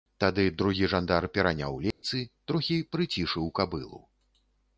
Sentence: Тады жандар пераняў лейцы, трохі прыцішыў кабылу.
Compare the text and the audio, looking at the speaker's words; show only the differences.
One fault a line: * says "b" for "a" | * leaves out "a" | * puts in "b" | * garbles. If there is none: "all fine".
* puts in "другі"